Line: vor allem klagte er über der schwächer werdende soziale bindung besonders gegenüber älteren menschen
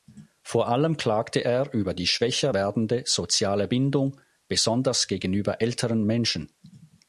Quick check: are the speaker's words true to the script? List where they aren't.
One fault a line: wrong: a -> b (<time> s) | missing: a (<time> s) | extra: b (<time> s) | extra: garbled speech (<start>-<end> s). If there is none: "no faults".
wrong: der -> die (1.9 s)